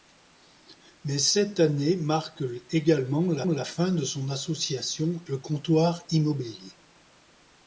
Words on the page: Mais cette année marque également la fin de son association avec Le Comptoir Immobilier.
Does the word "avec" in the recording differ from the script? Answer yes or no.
yes